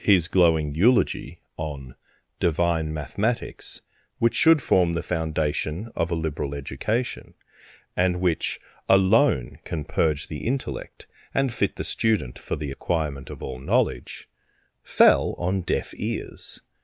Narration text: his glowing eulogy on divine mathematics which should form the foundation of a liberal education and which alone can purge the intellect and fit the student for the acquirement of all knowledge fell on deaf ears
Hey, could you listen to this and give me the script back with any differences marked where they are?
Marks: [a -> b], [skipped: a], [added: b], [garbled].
his glowing eulogy on divine mathematics which should form the foundation of a liberal education and which alone can purge the intellect and fit the student for the acquirement of all knowledge fell on deaf ears